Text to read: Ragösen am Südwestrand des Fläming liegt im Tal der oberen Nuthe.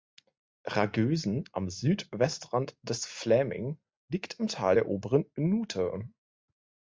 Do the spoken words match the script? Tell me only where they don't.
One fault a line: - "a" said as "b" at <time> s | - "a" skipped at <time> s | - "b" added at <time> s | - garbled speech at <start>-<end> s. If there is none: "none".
none